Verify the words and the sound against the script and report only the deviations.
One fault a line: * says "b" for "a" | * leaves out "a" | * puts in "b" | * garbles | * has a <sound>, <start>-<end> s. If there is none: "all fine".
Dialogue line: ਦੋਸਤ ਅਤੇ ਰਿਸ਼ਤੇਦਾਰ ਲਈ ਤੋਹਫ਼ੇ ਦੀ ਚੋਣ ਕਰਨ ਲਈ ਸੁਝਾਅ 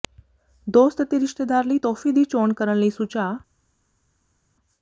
all fine